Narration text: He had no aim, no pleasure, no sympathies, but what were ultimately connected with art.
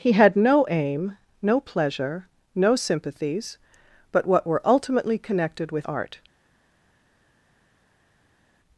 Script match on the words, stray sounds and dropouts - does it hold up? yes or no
yes